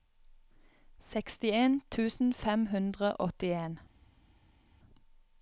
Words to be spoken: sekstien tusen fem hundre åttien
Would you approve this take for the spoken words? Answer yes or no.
yes